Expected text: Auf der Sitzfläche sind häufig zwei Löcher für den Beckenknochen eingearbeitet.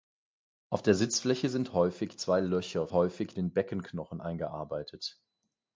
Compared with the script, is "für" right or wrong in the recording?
wrong